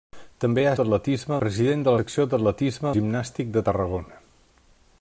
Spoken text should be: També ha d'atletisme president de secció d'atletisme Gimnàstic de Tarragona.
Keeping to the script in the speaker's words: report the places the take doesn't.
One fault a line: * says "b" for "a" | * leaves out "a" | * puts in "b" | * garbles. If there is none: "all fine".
all fine